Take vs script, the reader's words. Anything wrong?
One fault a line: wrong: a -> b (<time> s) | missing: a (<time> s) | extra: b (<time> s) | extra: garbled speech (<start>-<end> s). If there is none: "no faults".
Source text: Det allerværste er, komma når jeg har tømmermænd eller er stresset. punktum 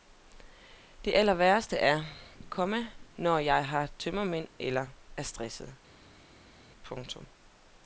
no faults